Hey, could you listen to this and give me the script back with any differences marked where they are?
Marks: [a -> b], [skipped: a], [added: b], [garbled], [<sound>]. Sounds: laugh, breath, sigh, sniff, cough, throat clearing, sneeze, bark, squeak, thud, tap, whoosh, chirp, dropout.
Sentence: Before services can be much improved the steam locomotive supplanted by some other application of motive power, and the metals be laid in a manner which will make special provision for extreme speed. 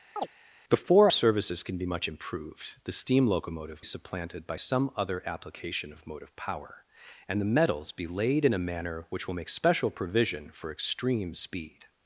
[chirp] Before services can be much improved the steam locomotive supplanted by some other application of motive power, and the metals be laid in a manner which will make special provision for extreme speed.